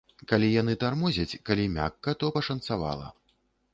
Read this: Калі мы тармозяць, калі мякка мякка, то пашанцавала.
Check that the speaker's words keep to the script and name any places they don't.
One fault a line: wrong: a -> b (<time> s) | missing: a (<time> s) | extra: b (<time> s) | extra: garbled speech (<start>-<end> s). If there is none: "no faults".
wrong: мы -> яны (0.6 s)
missing: мякка (2.2 s)